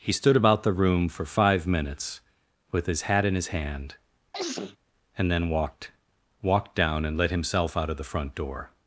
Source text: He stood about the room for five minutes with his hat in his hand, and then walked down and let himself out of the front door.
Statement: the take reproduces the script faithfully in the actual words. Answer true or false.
false